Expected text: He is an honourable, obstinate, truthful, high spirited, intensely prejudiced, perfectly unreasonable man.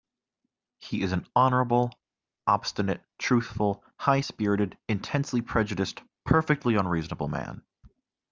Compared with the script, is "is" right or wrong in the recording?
right